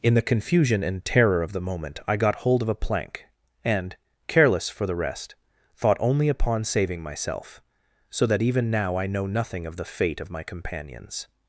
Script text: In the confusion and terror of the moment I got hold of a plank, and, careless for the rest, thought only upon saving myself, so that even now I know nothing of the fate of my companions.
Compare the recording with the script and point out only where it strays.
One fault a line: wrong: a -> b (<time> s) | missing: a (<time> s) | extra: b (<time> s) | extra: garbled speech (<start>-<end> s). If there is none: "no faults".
no faults